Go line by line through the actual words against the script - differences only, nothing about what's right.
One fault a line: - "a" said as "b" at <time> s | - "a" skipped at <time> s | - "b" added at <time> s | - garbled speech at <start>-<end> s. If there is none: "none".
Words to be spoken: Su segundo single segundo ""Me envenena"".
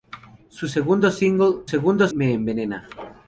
none